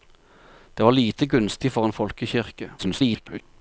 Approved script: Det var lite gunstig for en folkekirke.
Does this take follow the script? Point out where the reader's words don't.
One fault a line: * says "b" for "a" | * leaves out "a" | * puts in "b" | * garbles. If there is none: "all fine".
* garbles